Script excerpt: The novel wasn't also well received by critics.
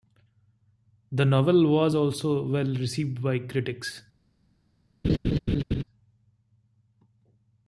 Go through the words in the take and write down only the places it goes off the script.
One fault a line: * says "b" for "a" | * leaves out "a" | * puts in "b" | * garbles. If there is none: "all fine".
* says "was" for "wasn't"